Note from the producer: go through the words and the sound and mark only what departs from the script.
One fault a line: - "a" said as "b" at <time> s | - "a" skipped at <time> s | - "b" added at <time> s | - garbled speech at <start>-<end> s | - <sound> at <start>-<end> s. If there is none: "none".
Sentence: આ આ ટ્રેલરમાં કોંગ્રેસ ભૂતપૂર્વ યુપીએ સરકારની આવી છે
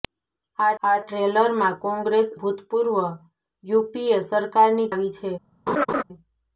- laugh at 5.7-6.0 s